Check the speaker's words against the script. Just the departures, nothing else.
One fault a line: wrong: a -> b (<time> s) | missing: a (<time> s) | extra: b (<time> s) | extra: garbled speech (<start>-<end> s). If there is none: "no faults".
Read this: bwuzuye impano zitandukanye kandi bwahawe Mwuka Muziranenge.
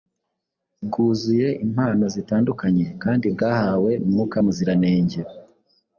no faults